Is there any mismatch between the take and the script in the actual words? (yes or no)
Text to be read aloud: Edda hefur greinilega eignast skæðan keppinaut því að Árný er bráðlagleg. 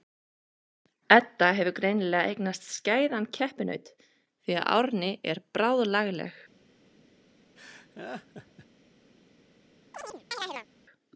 no